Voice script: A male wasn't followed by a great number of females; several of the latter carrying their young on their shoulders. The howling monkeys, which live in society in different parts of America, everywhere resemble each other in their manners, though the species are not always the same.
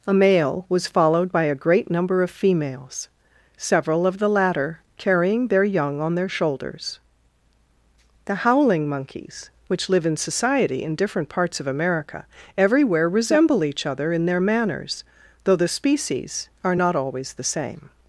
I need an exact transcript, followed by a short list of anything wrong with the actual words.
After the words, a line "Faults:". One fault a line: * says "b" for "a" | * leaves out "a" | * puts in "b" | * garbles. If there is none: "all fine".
A male was followed by a great number of females; several of the latter carrying their young on their shoulders. The howling monkeys, which live in society in different parts of America, everywhere resemble each other in their manners, though the species are not always the same.
Faults:
* says "was" for "wasn't"